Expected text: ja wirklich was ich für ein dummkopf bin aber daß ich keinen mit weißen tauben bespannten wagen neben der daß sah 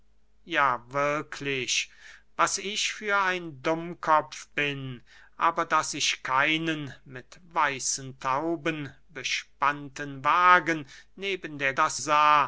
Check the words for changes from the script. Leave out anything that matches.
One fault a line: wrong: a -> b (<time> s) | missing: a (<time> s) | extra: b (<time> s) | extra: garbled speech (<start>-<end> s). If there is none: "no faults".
no faults